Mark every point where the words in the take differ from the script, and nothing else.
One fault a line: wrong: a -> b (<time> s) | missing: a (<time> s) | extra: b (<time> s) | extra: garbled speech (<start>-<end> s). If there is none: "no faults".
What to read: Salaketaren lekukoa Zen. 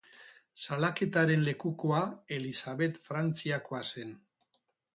extra: Elisabet Frantziakoa (2.4 s)